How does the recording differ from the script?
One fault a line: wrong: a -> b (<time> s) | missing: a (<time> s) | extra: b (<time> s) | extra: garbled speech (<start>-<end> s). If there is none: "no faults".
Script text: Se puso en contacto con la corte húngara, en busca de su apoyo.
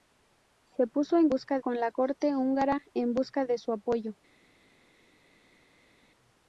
wrong: contacto -> busca (1.3 s)